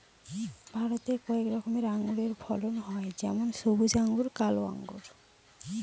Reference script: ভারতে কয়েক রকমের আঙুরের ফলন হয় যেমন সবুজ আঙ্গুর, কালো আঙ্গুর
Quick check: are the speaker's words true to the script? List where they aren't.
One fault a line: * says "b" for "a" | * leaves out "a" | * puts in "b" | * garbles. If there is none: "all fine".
all fine